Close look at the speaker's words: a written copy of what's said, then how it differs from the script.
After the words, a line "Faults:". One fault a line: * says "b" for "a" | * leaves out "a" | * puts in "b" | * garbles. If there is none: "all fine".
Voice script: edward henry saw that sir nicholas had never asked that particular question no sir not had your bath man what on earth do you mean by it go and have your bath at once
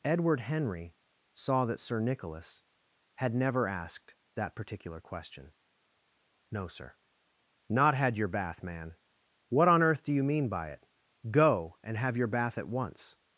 edward henry saw that sir nicholas had never asked that particular question no sir not had your bath man what on earth do you mean by it go and have your bath at once
Faults:
all fine